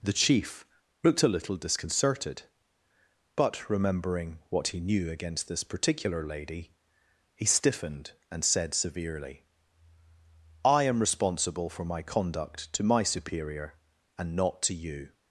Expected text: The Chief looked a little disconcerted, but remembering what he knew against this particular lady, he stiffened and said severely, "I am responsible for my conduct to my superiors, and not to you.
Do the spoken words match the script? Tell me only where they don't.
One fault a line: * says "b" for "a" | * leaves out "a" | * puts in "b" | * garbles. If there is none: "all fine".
* says "superior" for "superiors"